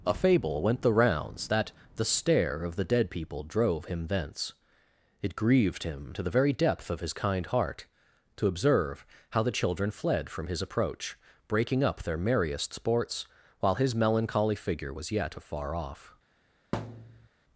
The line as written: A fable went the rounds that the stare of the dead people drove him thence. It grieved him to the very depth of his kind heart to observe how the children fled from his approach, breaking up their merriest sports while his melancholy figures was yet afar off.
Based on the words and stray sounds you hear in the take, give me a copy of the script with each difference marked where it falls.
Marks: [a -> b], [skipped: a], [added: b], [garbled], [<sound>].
A fable went the rounds that the stare of the dead people drove him thence. It grieved him to the very depth of his kind heart to observe how the children fled from his approach, breaking up their merriest sports while his melancholy [figures -> figure] was yet afar off. [thud]